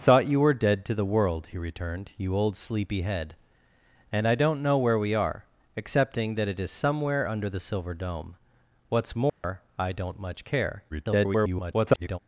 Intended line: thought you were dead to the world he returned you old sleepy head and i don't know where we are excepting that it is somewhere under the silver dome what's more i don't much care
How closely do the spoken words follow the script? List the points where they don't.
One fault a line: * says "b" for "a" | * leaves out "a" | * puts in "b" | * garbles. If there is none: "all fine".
* garbles